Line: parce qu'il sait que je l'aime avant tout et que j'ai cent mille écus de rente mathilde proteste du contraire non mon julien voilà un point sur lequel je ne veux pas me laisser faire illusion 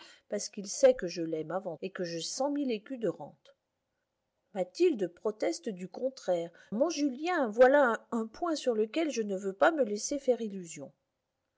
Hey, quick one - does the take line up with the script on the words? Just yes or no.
no